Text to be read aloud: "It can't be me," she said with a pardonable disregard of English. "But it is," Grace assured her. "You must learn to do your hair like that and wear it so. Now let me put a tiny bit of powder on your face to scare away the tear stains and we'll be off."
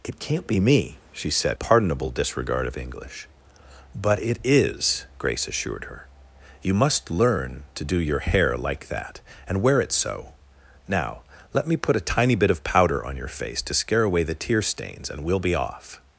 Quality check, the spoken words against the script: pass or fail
fail